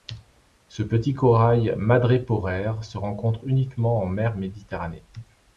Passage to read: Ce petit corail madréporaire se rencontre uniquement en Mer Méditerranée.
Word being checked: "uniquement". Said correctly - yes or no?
yes